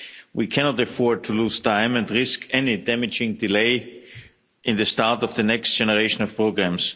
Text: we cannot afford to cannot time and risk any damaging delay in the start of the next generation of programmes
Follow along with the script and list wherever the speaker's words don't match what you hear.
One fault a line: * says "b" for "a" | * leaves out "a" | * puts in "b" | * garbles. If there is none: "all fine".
* says "lose" for "cannot"